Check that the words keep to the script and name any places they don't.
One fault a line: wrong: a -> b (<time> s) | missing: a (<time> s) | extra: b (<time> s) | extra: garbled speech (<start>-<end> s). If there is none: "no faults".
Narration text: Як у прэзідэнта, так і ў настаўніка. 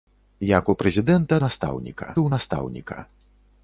wrong: так -> настаўніка (1.5 s)